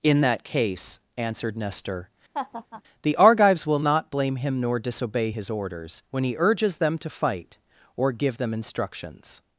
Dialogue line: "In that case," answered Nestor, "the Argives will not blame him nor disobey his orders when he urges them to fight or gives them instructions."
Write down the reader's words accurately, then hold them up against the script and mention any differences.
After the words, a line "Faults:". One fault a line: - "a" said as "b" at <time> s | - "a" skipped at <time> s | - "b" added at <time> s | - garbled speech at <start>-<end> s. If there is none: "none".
"In that case," answered Nestor, "the Argives will not blame him nor disobey his orders when he urges them to fight or give them instructions."
Faults:
- "gives" said as "give" at 8.1 s